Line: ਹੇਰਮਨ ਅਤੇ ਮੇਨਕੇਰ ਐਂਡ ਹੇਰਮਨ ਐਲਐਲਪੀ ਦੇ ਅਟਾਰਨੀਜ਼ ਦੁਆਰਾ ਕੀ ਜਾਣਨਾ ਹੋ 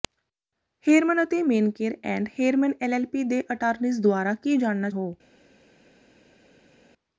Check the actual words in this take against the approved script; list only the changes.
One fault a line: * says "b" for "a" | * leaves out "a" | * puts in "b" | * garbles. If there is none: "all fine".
all fine